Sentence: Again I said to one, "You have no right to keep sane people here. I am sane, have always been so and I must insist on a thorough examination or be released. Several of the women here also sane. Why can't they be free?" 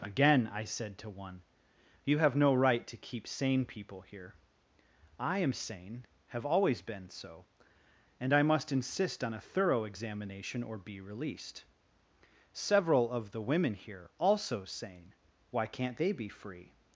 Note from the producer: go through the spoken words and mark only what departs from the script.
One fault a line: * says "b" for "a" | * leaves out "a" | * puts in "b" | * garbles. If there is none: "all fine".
all fine